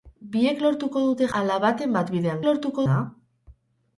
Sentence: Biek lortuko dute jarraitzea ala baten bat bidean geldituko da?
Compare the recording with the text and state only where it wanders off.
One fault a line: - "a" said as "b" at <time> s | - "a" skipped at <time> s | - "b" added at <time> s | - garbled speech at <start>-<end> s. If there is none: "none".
- "jarraitzea" skipped at 1.3 s
- "geldituko" said as "lortuko" at 2.5 s